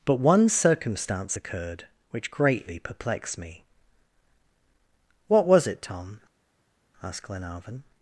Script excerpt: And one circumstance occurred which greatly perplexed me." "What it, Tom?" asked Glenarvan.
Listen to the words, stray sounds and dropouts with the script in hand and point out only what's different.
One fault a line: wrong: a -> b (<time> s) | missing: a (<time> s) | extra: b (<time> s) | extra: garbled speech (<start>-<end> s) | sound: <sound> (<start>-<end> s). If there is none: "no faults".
wrong: And -> But (0.0 s)
extra: was (5.5 s)